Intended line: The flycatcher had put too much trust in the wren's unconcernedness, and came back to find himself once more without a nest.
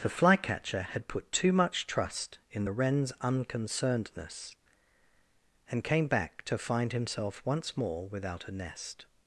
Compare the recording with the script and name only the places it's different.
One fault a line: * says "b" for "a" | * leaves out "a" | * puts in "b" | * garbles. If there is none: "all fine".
all fine